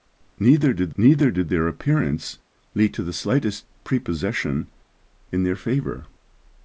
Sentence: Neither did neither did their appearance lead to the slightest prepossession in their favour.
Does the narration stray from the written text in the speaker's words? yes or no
no